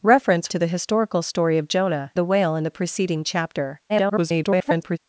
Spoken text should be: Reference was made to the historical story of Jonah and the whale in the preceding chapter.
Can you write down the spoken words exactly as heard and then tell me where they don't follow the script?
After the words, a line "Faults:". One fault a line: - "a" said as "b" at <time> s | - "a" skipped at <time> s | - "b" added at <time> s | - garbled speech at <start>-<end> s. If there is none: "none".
Reference to the historical story of Jonah the whale in the preceding chapter. [garbled]
Faults:
- "was made" skipped at 0.5 s
- "and" skipped at 2.1 s
- garbled speech at 3.9-5.0 s